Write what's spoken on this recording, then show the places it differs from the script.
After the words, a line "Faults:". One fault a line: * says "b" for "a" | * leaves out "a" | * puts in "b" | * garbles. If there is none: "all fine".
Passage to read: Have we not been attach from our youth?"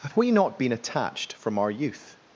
Have we not been attached from our youth?"
Faults:
* says "attached" for "attach"